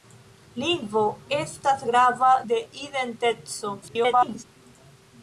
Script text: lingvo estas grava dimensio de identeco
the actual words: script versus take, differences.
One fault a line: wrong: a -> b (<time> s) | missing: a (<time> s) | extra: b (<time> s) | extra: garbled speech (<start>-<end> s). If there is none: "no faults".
missing: dimensio (2.3 s)
extra: garbled speech (3.8-4.4 s)